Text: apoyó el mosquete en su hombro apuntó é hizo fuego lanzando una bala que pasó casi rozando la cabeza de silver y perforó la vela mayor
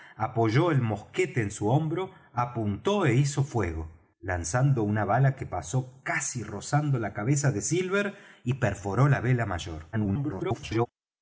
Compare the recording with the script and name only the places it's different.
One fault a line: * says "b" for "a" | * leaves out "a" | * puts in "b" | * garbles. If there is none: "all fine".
* garbles